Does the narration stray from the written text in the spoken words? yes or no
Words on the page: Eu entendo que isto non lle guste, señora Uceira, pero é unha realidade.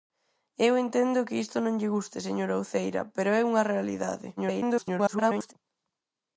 yes